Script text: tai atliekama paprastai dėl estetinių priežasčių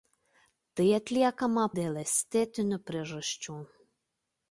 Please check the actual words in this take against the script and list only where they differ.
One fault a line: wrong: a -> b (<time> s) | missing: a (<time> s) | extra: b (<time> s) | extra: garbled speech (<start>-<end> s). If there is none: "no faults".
missing: paprastai (1.6 s)